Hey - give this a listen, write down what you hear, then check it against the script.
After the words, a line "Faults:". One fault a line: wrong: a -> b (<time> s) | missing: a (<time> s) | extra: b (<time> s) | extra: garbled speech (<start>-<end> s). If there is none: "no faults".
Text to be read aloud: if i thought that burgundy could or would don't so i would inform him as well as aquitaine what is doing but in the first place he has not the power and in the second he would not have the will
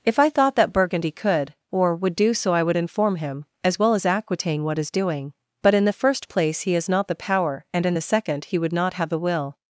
if i thought that burgundy could or would do so i would inform him as well as aquitaine what is doing but in the first place he has not the power and in the second he would not have the will
Faults:
wrong: don't -> do (2.1 s)